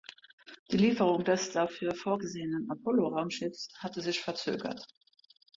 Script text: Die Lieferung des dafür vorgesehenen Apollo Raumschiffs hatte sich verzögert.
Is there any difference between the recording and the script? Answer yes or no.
no